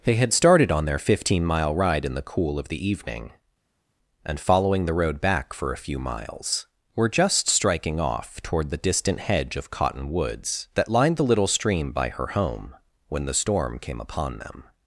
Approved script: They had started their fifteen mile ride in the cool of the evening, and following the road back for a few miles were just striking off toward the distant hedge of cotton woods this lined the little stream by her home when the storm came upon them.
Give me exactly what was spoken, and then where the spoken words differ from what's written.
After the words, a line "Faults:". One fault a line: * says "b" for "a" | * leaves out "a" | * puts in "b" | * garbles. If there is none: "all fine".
They had started on their fifteen mile ride in the cool of the evening, and following the road back for a few miles were just striking off toward the distant hedge of cotton woods that lined the little stream by her home when the storm came upon them.
Faults:
* puts in "on"
* says "that" for "this"